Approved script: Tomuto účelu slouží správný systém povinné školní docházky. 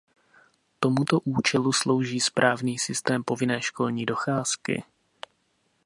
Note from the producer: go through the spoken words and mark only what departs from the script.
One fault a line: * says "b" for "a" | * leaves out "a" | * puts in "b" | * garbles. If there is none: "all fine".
all fine